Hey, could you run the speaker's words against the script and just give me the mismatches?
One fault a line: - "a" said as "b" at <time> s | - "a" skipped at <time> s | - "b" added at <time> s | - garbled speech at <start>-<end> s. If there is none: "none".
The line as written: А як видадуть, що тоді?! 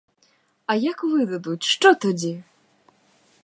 none